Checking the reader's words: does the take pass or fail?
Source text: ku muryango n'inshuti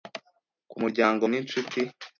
pass